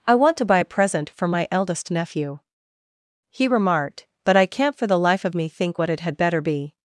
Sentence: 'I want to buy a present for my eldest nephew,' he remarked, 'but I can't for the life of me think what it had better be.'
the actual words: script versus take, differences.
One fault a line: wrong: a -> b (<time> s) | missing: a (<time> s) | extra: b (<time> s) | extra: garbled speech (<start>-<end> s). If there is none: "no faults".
no faults